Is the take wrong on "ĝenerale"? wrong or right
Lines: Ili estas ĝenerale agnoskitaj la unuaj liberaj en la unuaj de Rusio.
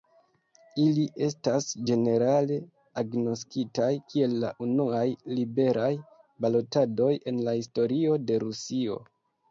right